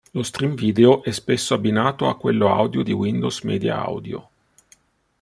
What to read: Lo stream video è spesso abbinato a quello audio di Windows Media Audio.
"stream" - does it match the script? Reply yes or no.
yes